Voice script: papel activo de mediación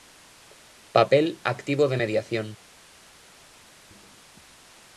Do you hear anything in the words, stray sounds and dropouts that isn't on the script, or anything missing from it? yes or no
no